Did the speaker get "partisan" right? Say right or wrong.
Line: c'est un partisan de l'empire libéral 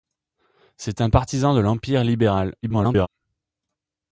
right